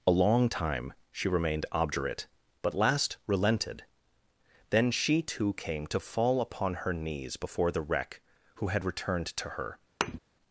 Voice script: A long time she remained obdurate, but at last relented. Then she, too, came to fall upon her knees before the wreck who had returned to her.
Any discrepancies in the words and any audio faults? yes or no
yes